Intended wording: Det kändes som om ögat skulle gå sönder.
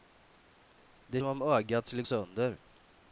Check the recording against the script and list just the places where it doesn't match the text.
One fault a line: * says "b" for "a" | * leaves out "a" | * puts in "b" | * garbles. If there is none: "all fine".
* leaves out "kändes"
* leaves out "gå"